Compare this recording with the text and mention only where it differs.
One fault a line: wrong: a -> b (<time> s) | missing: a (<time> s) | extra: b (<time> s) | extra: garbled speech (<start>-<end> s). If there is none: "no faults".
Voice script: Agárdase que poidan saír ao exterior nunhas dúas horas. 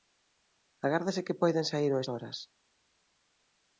missing: exterior nunhas dúas (2.0 s)